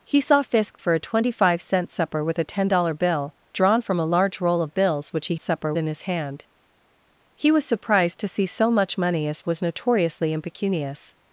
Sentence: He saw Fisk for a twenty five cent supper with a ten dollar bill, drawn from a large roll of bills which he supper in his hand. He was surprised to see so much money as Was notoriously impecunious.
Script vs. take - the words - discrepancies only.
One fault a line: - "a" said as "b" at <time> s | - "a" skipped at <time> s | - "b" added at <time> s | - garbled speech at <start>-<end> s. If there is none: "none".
none